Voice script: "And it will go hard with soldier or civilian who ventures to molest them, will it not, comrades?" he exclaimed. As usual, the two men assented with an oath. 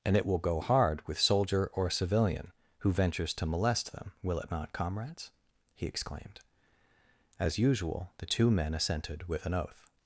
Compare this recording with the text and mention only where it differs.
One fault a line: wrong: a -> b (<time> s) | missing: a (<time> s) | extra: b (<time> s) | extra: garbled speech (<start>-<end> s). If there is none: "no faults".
no faults